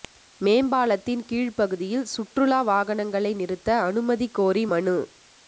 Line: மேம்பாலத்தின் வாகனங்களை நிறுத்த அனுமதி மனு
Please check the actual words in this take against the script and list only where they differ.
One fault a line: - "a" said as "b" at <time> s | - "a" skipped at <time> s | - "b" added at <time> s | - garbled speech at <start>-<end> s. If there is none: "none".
- "கீழ் பகுதியில் சுற்றுலா" added at 1.2 s
- "கோரி" added at 4.3 s